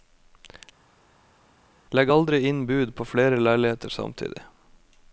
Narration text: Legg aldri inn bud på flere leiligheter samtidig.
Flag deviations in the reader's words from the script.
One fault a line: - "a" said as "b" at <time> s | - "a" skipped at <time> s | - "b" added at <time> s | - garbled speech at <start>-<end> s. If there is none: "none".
none